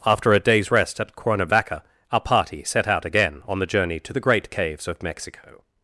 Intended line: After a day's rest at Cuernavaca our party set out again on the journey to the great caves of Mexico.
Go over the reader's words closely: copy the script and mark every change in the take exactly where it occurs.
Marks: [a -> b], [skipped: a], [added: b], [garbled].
After a day's rest at Cuernavaca our party set out again on the journey to the great caves of Mexico.